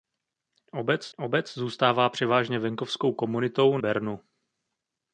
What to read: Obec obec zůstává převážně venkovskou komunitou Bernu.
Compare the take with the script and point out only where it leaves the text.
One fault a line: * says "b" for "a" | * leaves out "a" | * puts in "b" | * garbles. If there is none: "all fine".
all fine